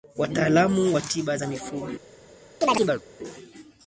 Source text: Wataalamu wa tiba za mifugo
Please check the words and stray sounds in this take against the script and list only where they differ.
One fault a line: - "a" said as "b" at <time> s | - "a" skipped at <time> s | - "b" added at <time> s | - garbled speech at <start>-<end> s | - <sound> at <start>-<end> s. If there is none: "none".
- chirp at 2.6-3.0 s